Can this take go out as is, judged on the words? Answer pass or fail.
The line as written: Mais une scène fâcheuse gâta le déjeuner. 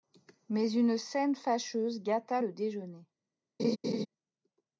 pass